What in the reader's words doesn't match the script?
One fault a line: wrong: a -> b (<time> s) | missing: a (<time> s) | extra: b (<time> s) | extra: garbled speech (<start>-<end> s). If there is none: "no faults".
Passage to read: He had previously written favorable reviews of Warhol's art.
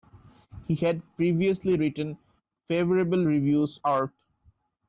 missing: of Warhol's (3.8 s)